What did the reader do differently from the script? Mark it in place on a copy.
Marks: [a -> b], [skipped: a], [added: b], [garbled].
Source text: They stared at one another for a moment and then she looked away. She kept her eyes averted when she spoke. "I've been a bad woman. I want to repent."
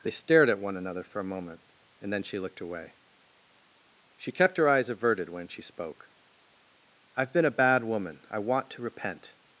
They stared at one another for a moment and then she looked away. She kept her eyes averted when she spoke. "I've been a bad woman. I want to repent."